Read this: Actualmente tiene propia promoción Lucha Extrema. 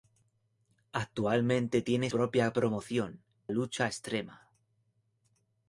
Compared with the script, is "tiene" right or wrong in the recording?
right